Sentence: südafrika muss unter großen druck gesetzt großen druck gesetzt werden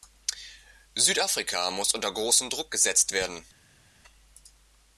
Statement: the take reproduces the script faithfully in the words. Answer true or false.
false